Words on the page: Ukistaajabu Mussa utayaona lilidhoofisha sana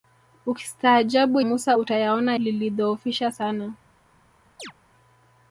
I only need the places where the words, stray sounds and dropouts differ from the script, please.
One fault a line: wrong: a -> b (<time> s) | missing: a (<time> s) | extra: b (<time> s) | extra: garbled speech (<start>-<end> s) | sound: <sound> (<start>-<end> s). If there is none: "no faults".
sound: chirp (4.6-4.7 s)